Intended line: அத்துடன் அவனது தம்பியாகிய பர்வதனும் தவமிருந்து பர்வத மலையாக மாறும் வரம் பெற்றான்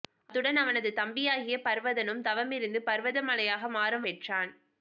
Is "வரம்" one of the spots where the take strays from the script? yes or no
yes